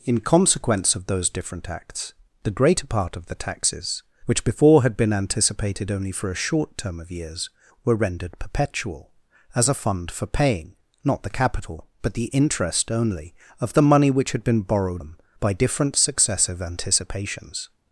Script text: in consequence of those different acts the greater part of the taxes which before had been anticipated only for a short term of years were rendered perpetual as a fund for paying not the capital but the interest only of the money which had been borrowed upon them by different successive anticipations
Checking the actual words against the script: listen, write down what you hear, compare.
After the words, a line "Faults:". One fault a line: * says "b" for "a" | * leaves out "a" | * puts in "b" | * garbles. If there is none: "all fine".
in consequence of those different acts the greater part of the taxes which before had been anticipated only for a short term of years were rendered perpetual as a fund for paying not the capital but the interest only of the money which had been borrowed them by different successive anticipations
Faults:
* leaves out "upon"